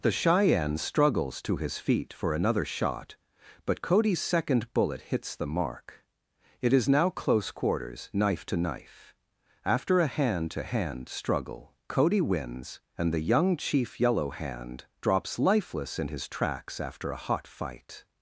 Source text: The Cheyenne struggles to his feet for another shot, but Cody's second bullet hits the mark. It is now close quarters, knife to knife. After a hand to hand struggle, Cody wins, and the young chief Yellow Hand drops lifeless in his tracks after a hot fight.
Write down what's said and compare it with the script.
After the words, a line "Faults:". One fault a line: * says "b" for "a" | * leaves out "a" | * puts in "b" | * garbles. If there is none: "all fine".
The Cheyenne struggles to his feet for another shot, but Cody's second bullet hits the mark. It is now close quarters, knife to knife. After a hand to hand struggle, Cody wins, and the young chief Yellow Hand drops lifeless in his tracks after a hot fight.
Faults:
all fine